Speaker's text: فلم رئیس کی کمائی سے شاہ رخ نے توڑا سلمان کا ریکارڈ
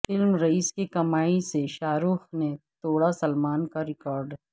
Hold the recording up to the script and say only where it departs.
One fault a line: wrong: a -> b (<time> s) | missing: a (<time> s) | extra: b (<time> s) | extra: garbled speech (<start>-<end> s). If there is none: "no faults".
no faults